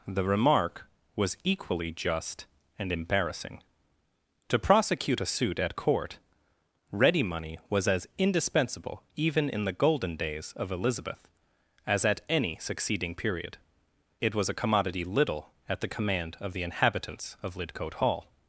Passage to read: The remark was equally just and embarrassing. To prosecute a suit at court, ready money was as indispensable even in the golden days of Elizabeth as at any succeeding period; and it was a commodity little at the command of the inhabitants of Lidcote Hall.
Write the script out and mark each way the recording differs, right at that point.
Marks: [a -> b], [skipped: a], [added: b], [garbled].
The remark was equally just and embarrassing. To prosecute a suit at court, ready money was as indispensable even in the golden days of Elizabeth as at any succeeding period; [skipped: and] it was a commodity little at the command of the inhabitants of Lidcote Hall.